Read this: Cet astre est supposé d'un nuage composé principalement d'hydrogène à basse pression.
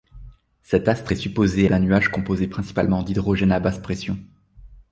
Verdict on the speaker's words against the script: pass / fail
pass